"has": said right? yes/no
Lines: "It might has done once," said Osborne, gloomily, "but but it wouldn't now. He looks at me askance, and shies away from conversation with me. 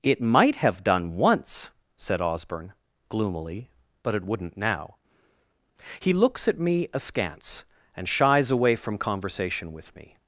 no